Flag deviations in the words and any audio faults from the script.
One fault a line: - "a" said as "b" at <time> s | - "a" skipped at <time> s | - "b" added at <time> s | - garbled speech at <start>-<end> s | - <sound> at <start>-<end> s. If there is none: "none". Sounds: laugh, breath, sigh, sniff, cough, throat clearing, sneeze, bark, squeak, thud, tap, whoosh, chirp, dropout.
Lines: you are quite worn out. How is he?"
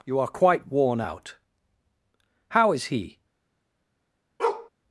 - bark at 4.4-4.7 s